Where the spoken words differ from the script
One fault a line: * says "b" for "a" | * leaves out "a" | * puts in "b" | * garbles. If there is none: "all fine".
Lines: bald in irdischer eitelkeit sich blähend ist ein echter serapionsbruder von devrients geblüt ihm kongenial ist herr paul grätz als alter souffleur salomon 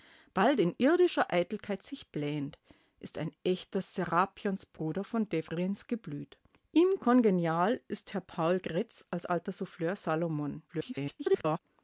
* garbles